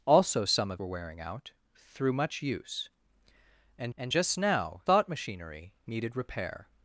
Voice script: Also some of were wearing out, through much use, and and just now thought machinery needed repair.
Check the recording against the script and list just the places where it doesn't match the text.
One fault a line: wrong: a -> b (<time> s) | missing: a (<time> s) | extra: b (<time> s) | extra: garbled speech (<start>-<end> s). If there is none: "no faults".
no faults